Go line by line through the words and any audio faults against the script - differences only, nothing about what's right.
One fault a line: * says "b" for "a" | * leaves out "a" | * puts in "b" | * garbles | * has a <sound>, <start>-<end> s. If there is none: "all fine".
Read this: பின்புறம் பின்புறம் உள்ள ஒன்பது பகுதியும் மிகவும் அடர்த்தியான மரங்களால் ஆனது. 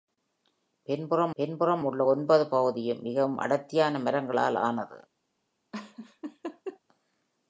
* has a laugh, 5.7-6.8 s